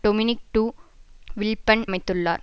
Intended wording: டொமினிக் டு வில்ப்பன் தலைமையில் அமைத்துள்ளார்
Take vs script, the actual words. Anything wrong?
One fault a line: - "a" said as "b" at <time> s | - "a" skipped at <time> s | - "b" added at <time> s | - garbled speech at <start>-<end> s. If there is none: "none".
- "தலைமையில்" skipped at 1.8 s